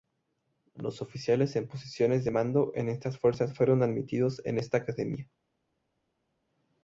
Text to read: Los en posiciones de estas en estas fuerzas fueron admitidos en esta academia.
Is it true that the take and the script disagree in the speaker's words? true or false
true